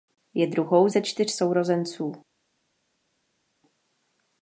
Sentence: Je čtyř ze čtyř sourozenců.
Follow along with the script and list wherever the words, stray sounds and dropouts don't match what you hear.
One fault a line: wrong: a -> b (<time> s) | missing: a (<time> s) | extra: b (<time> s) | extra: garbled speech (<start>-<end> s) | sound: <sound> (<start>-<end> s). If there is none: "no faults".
wrong: čtyř -> druhou (0.5 s)